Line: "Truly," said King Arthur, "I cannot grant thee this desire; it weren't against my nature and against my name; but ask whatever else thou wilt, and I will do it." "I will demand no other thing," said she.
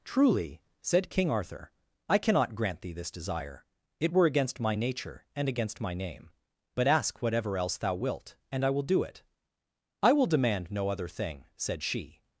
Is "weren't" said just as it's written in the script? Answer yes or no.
no